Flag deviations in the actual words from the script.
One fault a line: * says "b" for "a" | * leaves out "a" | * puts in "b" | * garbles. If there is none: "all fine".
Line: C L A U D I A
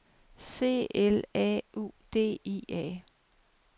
all fine